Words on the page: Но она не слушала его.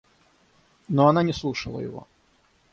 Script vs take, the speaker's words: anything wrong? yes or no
no